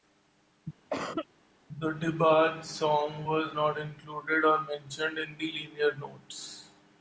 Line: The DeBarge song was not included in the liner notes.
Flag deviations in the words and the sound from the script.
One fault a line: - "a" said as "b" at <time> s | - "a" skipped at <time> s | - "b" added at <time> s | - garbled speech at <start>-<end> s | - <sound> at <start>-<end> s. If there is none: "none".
- cough at 0.9-1.3 s
- "or mentioned" added at 4.5 s